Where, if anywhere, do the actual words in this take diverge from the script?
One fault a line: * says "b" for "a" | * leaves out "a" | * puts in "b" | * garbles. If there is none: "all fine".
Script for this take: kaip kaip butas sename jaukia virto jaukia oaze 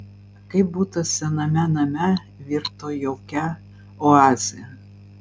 * leaves out "kaip"
* says "name" for "jaukia"